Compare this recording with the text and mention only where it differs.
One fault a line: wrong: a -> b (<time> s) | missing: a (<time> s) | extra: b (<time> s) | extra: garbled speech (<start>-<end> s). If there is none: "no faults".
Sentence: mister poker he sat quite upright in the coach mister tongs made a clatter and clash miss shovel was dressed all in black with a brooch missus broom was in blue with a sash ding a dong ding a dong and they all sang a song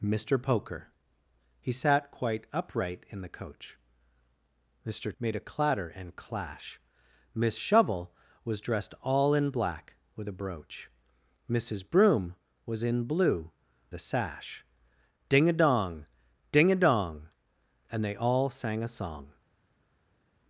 missing: tongs (5.1 s)
missing: with (13.5 s)